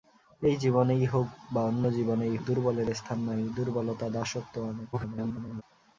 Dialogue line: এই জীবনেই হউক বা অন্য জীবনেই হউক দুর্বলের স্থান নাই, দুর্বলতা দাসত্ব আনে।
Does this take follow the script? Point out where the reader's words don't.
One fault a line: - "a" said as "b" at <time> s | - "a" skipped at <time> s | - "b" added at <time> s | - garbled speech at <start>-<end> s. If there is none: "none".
- "হউক" skipped at 2.4 s
- garbled speech at 4.9-5.6 s